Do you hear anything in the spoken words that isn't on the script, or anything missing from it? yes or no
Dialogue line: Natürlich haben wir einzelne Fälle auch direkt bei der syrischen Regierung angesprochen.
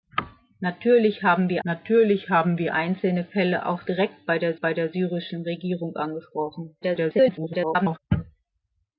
yes